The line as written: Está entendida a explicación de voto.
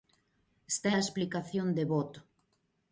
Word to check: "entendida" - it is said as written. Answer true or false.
false